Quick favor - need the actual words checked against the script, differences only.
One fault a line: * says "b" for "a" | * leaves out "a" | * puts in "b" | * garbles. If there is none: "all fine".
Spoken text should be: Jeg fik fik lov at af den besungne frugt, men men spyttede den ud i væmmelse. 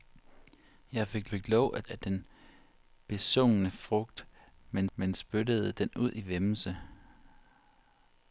all fine